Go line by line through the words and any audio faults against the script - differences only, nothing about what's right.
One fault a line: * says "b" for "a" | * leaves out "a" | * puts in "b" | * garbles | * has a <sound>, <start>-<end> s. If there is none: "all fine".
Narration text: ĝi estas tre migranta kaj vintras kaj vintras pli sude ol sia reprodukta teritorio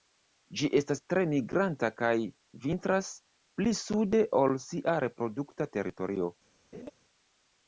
* leaves out "kaj vintras"
* has a laugh, 6.7-6.9 s